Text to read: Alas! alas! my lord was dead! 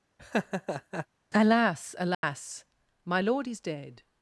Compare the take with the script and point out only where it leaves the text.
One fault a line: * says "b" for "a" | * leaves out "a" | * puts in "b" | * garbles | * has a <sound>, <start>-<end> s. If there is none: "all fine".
* has a laugh, 0.2-1.1 s
* has a dropout, 2.1-2.2 s
* says "is" for "was"